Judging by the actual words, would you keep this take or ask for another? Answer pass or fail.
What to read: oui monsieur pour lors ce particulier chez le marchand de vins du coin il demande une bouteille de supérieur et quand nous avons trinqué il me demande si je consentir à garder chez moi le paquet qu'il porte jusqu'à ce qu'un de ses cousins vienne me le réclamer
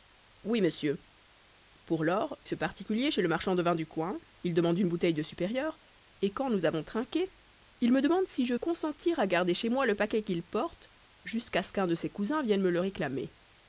pass